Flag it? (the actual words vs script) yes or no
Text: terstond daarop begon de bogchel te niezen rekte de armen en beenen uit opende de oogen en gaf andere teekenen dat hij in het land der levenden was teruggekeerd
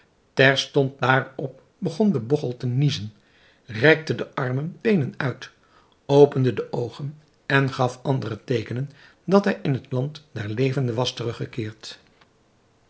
yes